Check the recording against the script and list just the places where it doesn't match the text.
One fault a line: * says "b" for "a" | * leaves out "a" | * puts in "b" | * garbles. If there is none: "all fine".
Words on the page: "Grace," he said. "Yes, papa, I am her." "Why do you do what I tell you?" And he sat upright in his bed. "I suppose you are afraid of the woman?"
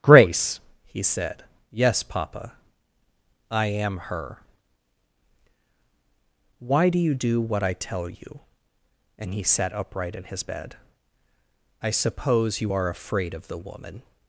all fine